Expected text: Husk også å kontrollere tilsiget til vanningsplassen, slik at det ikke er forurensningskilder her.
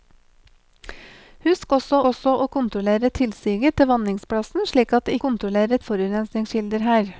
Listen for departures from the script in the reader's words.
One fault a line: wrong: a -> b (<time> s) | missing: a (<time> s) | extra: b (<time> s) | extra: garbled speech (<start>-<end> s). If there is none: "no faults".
extra: også (2.1 s)
wrong: ikke -> kontrollere (5.2 s)